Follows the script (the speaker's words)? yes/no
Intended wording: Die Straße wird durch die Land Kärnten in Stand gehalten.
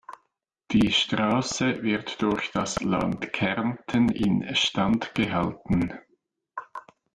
no